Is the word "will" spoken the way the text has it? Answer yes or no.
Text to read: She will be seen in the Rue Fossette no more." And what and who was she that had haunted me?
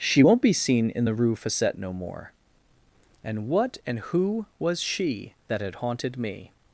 no